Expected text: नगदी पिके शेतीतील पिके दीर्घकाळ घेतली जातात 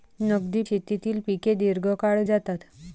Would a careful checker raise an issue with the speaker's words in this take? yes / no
yes